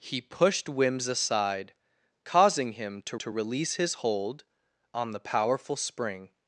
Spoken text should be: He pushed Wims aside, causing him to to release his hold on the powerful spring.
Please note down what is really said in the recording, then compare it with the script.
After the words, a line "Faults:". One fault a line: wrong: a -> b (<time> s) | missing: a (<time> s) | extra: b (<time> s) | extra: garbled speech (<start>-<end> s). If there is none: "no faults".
He pushed Wims aside, causing him to to release his hold on the powerful spring.
Faults:
no faults